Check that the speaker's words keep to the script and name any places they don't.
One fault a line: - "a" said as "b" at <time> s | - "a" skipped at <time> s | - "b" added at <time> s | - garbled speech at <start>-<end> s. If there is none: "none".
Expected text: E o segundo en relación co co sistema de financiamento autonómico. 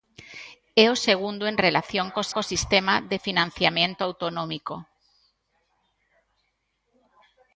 none